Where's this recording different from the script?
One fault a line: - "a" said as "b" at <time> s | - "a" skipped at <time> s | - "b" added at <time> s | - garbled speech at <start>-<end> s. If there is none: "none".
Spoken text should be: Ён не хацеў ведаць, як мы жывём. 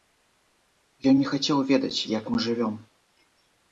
none